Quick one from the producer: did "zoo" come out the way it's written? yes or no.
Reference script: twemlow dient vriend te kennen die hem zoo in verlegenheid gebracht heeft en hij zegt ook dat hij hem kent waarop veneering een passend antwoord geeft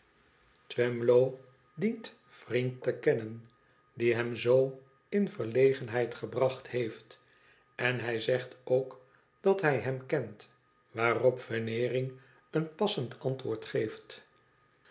yes